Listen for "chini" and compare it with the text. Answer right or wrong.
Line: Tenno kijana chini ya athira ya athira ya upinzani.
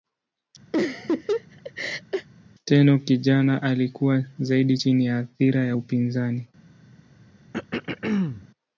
wrong